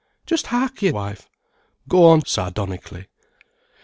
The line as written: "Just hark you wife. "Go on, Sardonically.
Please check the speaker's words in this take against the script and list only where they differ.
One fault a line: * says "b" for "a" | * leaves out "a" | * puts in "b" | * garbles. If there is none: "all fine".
all fine